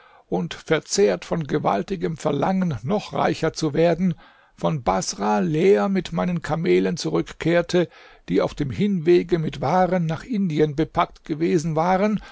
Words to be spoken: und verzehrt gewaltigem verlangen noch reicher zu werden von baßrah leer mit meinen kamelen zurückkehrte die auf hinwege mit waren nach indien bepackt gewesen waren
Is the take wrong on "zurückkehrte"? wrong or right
right